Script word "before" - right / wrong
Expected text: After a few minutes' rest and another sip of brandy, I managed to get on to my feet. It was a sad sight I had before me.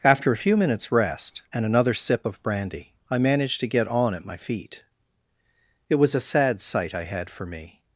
wrong